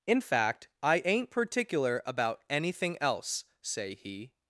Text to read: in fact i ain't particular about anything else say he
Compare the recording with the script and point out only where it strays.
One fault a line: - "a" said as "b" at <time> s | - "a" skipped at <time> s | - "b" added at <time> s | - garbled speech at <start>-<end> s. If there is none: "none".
none